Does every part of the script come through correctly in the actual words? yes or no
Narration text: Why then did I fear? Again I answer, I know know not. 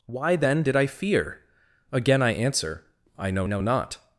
yes